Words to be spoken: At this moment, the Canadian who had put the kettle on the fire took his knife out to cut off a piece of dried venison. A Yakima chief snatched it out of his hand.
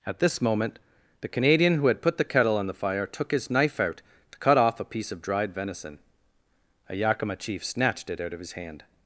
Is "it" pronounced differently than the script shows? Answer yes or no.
no